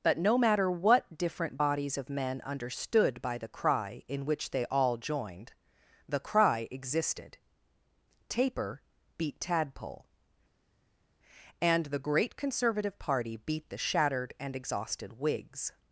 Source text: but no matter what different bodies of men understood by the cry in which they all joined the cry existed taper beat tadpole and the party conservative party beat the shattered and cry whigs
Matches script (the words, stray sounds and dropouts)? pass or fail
fail